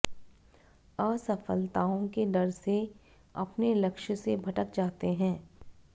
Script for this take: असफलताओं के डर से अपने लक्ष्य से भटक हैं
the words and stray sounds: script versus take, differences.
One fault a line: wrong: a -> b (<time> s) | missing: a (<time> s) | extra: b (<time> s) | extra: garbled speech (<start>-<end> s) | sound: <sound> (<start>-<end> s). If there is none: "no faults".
extra: जाते (4.8 s)